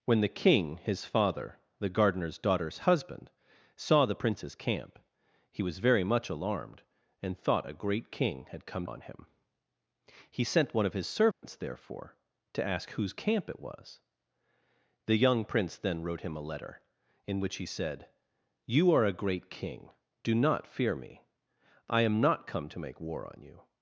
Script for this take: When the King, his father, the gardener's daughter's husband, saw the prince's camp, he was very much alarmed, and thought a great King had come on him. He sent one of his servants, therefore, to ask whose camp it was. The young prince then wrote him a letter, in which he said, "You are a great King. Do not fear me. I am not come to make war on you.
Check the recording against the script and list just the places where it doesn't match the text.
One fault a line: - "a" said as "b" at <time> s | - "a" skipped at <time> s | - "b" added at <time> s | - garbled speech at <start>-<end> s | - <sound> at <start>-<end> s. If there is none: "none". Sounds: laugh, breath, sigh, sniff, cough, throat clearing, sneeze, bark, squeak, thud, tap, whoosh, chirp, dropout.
- dropout at 11.3-11.4 s